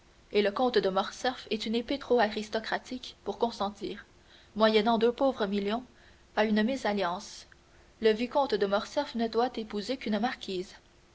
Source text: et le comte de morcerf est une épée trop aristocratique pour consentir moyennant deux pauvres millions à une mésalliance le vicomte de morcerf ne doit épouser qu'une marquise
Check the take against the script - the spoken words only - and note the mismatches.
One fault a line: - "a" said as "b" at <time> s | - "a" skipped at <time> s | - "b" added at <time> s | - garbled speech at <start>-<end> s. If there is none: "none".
none